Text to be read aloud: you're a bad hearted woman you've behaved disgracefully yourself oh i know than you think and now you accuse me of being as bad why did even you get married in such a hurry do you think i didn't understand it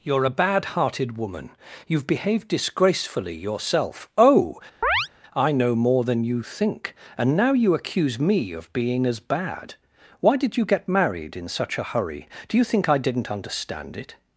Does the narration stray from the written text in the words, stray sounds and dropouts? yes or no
yes